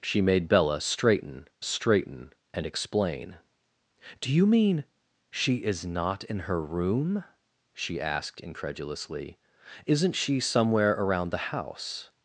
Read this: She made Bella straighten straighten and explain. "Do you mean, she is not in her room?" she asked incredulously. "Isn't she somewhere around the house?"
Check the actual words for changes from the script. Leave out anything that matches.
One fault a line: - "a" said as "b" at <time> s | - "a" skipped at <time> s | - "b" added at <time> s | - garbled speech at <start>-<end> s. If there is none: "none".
none